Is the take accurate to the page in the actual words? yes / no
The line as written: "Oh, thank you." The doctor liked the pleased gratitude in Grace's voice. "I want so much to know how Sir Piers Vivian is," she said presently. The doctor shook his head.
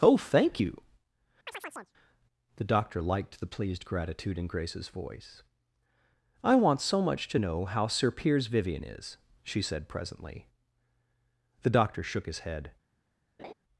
yes